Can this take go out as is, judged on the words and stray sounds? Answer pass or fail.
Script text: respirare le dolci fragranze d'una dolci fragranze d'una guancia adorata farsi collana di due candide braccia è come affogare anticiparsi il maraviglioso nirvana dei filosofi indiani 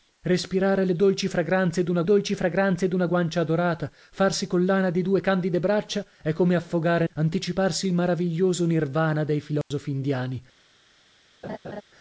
fail